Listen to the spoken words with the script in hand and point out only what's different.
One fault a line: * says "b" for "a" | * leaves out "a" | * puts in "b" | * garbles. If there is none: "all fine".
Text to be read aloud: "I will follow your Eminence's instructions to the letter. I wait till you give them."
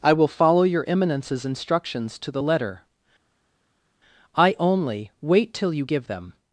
* puts in "only"